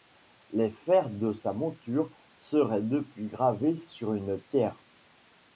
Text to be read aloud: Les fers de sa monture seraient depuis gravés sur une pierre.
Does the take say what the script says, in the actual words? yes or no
yes